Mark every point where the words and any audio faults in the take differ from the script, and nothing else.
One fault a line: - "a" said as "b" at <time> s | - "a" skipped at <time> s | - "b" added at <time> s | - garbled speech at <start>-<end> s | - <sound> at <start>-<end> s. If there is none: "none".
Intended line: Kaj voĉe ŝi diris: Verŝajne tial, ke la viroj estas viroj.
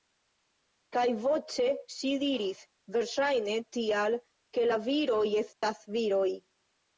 - dropout at 5.5-5.6 s